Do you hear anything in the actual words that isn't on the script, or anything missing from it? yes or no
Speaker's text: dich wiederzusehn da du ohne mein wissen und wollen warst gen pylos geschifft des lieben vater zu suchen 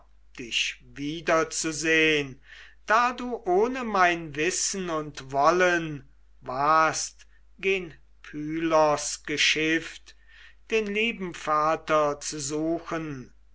yes